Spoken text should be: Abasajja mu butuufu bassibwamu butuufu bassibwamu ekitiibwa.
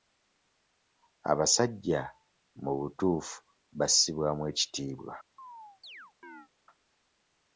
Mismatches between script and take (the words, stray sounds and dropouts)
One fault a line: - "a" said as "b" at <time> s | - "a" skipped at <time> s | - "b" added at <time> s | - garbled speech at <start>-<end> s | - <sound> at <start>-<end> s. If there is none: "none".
- "butuufu bassibwamu" skipped at 4.4 s
- chirp at 5.4-6.5 s